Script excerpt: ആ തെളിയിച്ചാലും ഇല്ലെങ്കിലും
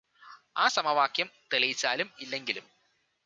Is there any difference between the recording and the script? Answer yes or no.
yes